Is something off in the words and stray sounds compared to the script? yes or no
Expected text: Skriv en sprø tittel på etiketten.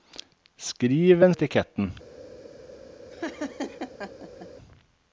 yes